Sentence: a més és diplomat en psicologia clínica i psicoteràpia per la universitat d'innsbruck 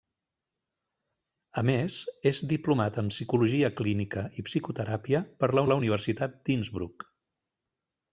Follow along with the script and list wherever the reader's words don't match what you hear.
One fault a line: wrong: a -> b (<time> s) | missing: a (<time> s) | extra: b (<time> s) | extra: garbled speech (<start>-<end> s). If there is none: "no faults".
extra: la (5.7 s)